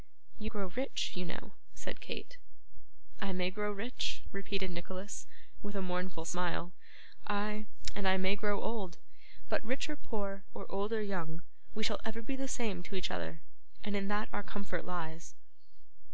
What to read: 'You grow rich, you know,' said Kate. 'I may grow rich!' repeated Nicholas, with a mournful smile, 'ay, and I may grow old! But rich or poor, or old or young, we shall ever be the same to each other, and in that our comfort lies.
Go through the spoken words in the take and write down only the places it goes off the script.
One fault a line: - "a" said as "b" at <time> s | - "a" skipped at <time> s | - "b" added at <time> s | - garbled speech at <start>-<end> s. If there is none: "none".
none